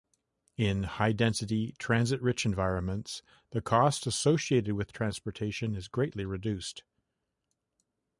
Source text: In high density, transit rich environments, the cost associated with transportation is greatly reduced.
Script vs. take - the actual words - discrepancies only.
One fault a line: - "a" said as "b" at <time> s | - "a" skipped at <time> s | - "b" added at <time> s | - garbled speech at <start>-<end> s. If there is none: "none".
none